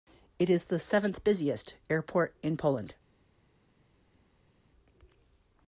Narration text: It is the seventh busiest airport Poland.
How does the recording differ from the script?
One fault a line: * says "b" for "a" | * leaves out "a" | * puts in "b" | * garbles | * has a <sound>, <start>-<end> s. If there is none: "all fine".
* puts in "in"